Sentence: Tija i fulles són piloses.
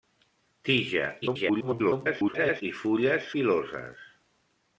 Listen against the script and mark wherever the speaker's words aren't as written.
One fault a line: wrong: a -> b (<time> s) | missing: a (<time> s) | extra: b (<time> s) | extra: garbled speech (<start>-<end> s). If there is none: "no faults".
extra: garbled speech (1.2-2.6 s)
missing: són (3.3 s)